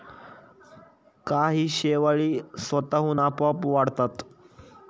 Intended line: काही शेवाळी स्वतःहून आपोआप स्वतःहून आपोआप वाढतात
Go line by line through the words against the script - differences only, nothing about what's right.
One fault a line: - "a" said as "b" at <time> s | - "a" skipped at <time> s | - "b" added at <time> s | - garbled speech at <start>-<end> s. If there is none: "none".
- "स्वतःहून आपोआप" skipped at 3.7 s